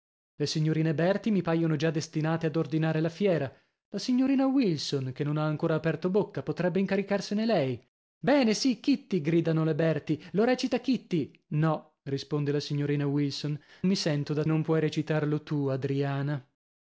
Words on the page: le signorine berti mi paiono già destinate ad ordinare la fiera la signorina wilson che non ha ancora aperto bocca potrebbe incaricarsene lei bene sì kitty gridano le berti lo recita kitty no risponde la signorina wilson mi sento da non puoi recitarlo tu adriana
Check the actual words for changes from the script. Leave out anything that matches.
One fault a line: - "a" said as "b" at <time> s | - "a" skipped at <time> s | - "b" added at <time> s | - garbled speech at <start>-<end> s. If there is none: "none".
none